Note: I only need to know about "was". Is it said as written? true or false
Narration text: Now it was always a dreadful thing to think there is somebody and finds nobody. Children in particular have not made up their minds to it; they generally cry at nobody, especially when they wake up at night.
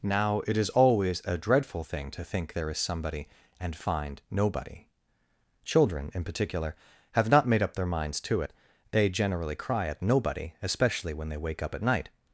false